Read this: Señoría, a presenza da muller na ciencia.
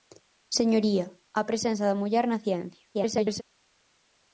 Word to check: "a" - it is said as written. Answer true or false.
true